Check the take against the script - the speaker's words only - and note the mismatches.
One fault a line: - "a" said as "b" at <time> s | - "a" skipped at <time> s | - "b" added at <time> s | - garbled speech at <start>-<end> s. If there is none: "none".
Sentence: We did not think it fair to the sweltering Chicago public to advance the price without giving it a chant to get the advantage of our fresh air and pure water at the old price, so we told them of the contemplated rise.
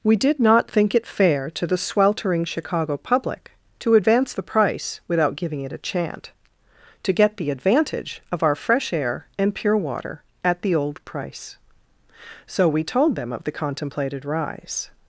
none